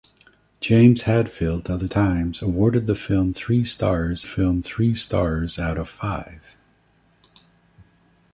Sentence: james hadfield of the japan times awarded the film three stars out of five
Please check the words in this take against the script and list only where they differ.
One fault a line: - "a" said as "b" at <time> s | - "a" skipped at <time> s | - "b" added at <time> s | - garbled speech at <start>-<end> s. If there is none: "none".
- "japan" skipped at 1.9 s
- "film three stars" added at 4.2 s